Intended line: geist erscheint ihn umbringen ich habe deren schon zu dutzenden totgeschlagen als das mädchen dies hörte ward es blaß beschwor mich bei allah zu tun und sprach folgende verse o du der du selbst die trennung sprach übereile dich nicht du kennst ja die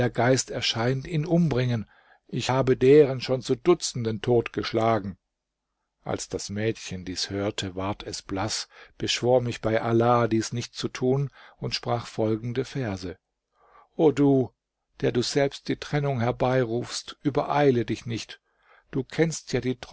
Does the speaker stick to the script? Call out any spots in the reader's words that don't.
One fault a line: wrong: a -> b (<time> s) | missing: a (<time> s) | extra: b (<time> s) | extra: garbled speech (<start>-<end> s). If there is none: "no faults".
extra: dies nicht (10.3 s)
wrong: sprach -> herbeirufst (16.2 s)